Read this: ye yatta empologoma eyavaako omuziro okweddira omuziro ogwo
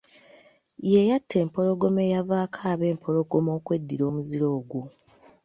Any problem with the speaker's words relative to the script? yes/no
yes